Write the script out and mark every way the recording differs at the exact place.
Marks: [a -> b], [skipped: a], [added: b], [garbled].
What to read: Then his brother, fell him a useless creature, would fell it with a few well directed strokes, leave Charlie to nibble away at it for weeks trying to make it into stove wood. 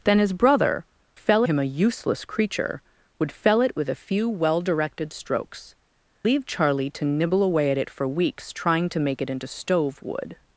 Then his brother, fell him a useless creature, would fell it with a few well directed strokes, leave Charlie to nibble away at it for weeks trying to make it into stove wood.